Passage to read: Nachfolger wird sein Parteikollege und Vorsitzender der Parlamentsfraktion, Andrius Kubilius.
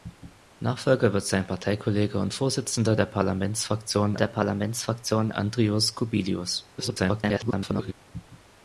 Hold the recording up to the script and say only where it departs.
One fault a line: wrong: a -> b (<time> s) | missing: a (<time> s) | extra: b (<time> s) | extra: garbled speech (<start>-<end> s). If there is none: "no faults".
extra: der Parlamentsfraktion (4.1 s)
extra: garbled speech (6.8-7.9 s)